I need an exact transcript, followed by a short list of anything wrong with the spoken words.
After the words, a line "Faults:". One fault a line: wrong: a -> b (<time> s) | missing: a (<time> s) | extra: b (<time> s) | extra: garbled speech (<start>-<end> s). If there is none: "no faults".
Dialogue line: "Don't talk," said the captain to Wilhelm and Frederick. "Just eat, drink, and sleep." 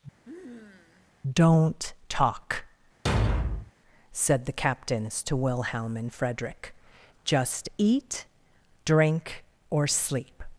"Don't talk," said the captains to Wilhelm and Frederick. "Just eat, drink, or sleep."
Faults:
wrong: captain -> captains (4.5 s)
wrong: and -> or (9.7 s)